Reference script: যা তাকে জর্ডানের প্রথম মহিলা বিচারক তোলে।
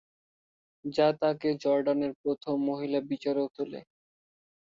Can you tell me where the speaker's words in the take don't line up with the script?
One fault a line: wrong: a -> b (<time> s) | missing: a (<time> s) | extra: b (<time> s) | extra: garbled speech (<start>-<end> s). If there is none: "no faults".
no faults